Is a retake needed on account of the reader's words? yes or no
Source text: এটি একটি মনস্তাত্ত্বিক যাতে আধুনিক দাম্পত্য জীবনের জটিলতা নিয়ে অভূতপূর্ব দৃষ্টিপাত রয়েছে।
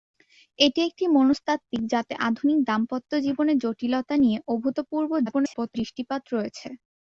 yes